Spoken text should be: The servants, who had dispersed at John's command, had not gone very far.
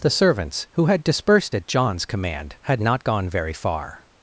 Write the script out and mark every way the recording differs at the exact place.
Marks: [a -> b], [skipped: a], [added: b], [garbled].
The servants, who had dispersed at John's command, had not gone very far.